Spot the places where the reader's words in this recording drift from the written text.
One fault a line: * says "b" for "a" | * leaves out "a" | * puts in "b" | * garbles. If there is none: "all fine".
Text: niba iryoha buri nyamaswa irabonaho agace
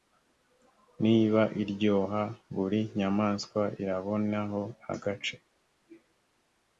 all fine